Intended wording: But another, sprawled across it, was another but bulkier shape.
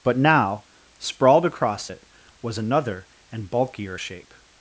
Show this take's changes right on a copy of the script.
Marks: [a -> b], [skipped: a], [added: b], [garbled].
But [another, -> now] sprawled across it, was another [but -> and] bulkier shape.